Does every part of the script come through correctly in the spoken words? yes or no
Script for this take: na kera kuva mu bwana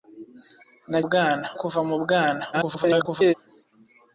no